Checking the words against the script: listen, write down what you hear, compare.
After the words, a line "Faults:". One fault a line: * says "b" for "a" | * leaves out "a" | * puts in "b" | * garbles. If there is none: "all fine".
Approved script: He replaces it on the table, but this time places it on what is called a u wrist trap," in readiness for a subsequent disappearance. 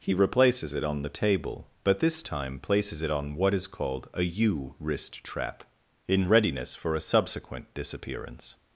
He replaces it on the table, but this time places it on what is called a u wrist trap," in readiness for a subsequent disappearance.
Faults:
all fine